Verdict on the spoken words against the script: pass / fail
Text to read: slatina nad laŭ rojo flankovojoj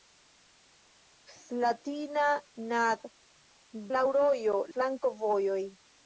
pass